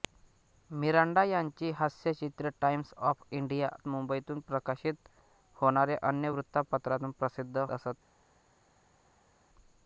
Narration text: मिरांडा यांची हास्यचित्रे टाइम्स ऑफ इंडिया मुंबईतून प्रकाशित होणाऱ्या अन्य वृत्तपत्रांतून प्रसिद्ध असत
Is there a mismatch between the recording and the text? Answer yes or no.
no